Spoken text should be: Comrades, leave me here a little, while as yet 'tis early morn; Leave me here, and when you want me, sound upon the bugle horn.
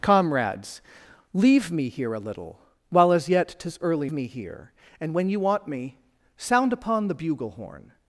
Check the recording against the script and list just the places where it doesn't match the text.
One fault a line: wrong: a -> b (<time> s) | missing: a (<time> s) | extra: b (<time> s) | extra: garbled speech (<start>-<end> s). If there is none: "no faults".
missing: morn Leave (4.1 s)